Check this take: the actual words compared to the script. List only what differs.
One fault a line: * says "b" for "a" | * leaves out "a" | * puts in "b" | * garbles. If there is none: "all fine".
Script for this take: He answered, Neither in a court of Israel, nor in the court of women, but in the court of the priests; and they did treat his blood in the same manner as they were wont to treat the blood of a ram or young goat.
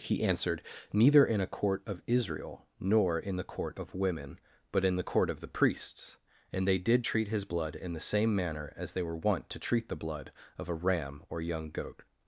all fine